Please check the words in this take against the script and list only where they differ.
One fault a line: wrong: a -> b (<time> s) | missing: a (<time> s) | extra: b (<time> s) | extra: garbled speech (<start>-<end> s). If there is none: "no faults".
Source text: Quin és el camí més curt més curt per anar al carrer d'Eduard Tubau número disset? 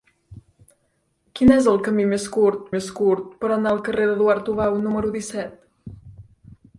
no faults